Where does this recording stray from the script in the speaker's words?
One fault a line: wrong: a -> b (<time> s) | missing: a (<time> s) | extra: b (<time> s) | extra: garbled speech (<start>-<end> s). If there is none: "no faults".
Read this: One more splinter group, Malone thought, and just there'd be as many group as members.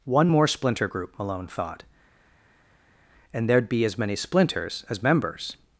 missing: just (3.5 s)
wrong: group -> splinters (4.1 s)